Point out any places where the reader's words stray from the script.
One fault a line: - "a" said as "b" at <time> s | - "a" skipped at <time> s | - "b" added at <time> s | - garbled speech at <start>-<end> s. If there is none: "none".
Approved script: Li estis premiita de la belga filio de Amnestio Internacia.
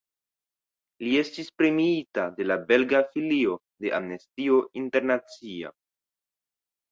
none